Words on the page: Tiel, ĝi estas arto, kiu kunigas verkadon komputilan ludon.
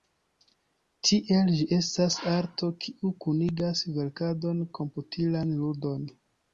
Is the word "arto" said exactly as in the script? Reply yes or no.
yes